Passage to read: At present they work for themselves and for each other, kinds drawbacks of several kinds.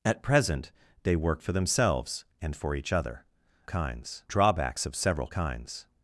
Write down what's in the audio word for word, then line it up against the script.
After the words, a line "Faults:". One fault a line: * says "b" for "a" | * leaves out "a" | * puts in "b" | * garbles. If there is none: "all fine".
At present they work for themselves and for each other, kinds drawbacks of several kinds.
Faults:
all fine